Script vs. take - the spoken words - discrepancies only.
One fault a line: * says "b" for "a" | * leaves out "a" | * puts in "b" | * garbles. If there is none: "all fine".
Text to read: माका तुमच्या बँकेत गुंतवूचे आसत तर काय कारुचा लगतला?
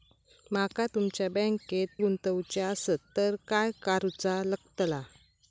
all fine